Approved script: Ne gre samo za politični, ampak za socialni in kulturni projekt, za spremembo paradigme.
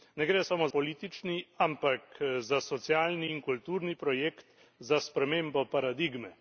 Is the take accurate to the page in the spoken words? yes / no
no